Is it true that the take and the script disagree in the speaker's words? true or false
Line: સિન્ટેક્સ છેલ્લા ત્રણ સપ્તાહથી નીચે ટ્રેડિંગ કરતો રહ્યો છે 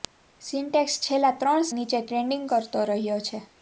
true